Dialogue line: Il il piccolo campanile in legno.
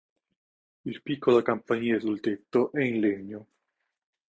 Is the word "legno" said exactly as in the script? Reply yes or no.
yes